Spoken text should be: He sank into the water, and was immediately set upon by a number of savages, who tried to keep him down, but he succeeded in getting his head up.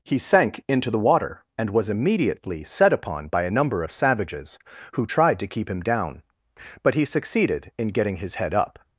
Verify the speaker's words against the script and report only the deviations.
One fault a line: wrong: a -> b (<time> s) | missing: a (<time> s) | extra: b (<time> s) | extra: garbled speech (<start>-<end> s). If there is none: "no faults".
no faults